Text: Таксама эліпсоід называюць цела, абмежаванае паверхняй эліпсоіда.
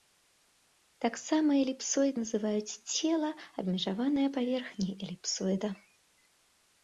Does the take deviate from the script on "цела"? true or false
false